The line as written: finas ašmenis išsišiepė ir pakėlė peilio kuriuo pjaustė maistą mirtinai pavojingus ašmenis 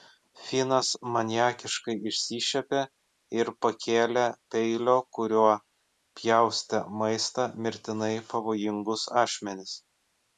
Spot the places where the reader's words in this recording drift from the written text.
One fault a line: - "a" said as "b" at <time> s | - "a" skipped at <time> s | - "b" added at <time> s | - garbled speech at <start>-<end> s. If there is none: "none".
- "ašmenis" said as "maniakiškai" at 1.1 s